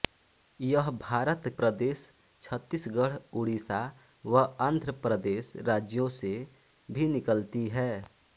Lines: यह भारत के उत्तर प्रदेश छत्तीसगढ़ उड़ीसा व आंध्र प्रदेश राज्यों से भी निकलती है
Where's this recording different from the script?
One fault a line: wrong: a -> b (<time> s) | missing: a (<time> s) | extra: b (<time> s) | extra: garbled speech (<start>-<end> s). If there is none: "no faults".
missing: के उत्तर (1.4 s)